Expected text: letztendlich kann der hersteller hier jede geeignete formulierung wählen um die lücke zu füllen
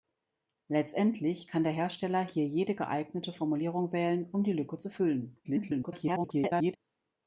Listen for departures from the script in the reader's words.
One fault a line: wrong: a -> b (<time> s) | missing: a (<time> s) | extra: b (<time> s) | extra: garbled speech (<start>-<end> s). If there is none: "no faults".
extra: garbled speech (5.4-6.8 s)